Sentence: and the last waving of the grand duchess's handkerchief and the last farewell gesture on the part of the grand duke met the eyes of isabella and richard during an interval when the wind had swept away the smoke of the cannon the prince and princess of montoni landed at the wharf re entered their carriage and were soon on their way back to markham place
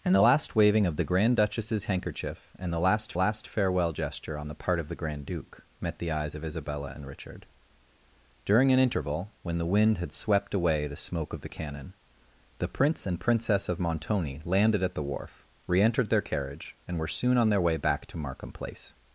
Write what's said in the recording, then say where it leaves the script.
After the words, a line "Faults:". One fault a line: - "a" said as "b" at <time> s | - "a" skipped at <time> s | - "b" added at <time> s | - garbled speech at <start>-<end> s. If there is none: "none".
and the last waving of the grand duchess's handkerchief and the last last farewell gesture on the part of the grand duke met the eyes of isabella and richard during an interval when the wind had swept away the smoke of the cannon the prince and princess of montoni landed at the wharf re entered their carriage and were soon on their way back to markham place
Faults:
- "last" added at 3.1 s